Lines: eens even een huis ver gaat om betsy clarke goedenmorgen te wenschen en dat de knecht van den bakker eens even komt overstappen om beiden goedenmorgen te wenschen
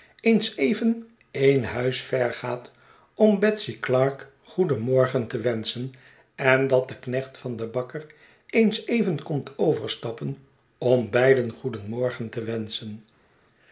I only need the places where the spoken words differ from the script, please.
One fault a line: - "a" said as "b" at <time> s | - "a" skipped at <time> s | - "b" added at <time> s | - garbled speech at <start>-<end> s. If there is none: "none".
none